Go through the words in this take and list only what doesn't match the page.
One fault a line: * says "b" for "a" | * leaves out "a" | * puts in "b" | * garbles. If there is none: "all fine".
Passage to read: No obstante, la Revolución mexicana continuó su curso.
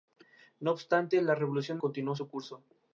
* leaves out "mexicana"